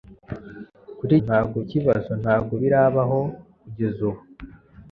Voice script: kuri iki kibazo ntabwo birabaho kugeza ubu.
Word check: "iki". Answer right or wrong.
wrong